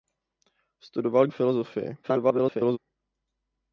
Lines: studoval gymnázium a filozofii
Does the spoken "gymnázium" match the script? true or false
false